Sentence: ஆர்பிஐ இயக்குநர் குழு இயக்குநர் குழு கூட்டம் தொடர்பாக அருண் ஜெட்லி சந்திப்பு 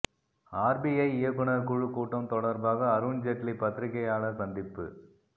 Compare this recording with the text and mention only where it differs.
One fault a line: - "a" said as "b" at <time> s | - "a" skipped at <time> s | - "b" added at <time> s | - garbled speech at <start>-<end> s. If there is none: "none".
- "இயக்குநர் குழு" skipped at 1.9 s
- "பத்திரிகையாளர்" added at 3.6 s